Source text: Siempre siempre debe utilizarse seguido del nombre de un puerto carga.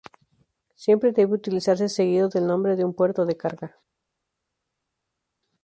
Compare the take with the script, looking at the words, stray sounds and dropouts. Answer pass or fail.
fail